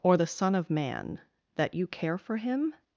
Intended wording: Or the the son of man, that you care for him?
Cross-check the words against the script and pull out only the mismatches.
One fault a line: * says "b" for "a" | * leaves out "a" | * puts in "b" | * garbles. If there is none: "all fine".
* leaves out "the"